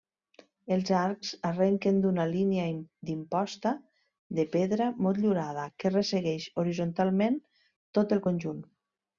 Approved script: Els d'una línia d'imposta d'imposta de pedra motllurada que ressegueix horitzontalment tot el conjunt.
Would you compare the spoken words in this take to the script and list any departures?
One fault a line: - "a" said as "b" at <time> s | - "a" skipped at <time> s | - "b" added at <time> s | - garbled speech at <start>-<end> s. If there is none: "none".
- "arcs arrenquen" added at 1.0 s
- "d'imposta" skipped at 3.8 s